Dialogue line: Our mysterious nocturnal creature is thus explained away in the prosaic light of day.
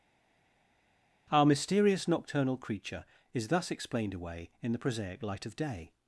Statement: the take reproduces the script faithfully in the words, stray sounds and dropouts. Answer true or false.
true